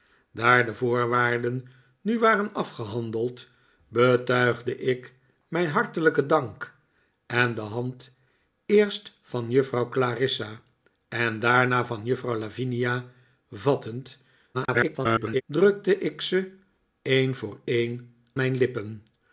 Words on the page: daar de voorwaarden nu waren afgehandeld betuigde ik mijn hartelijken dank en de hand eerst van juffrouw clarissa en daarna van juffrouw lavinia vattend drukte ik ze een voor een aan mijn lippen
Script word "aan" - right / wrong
wrong